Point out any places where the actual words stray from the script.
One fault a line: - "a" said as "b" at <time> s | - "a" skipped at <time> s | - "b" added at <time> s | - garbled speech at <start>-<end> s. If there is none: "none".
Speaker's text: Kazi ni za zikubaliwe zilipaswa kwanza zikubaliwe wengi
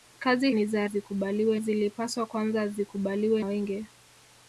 none